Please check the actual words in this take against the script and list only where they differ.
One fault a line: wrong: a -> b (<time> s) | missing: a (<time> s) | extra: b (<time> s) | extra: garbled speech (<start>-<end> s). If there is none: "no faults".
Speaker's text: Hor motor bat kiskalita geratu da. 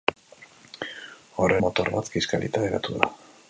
no faults